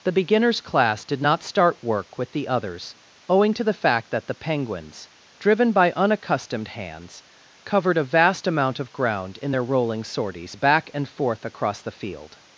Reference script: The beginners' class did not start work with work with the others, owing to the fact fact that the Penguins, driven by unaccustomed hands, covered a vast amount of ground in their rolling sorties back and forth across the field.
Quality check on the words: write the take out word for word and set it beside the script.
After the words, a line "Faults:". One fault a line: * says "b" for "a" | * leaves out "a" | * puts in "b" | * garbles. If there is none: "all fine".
The beginners' class did not start work with the others, owing to the fact that the Penguins, driven by unaccustomed hands, covered a vast amount of ground in their rolling sorties back and forth across the field.
Faults:
* leaves out "work with"
* leaves out "fact"